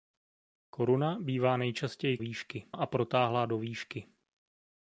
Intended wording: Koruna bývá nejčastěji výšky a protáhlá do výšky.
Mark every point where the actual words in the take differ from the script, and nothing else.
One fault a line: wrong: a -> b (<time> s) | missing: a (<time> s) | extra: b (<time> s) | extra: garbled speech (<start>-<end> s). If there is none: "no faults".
no faults